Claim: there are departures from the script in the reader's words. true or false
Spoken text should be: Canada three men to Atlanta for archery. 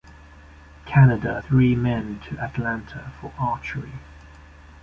false